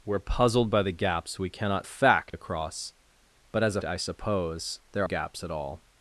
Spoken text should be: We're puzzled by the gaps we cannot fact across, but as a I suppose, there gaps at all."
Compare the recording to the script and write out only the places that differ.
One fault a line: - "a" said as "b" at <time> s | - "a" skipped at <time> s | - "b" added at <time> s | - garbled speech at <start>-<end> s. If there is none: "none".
none